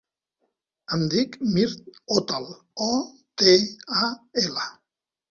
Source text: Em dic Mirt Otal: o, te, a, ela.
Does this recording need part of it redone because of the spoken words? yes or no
no